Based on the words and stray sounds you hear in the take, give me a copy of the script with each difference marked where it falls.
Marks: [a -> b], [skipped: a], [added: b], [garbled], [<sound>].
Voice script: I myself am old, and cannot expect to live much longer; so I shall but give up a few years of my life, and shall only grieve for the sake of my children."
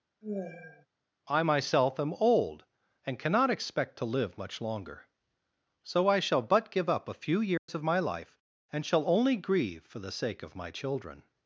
[sigh] I myself am old, and cannot expect to live much longer; so I shall but give up a few years [dropout] of my life, and shall only grieve for the sake of my children."